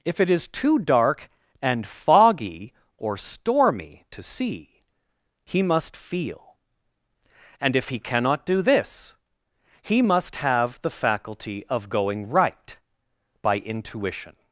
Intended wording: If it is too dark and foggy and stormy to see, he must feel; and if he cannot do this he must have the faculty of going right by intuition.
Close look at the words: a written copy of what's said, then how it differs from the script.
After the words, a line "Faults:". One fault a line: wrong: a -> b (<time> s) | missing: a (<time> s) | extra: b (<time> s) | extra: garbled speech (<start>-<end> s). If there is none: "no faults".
If it is too dark and foggy or stormy to see, he must feel; and if he cannot do this he must have the faculty of going right by intuition.
Faults:
wrong: and -> or (3.0 s)